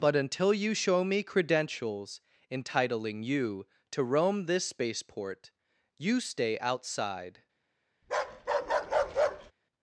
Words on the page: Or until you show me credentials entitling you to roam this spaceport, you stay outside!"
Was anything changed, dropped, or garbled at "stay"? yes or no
no